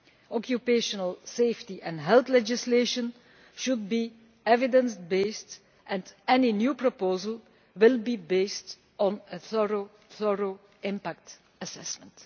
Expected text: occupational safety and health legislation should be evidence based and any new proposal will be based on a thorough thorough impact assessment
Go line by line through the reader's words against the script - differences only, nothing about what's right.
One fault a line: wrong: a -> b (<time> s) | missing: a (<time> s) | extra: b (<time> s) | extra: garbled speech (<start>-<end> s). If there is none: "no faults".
no faults